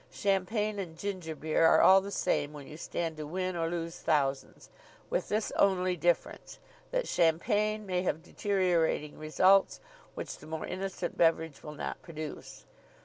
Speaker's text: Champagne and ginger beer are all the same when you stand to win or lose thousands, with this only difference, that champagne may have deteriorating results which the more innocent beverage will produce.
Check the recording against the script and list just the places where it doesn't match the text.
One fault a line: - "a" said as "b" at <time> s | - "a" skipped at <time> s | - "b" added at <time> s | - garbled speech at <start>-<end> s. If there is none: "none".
- "not" added at 11.7 s